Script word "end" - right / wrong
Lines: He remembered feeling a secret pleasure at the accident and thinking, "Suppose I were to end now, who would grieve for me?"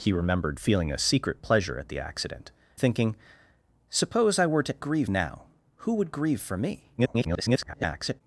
wrong